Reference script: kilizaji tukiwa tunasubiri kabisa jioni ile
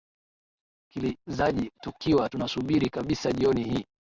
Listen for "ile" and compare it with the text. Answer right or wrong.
wrong